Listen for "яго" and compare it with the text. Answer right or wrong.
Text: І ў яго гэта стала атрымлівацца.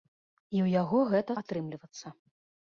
right